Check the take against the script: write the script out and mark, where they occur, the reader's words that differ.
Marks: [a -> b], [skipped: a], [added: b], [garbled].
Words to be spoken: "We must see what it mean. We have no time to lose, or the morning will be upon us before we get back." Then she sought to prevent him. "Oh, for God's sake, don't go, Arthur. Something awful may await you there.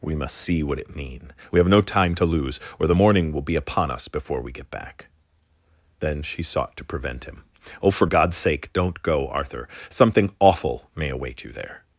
"We must see what it mean. We have no time to lose, or the morning will be upon us before we get back." Then she sought to prevent him. "Oh, for God's sake, don't go, Arthur. Something awful may await you there.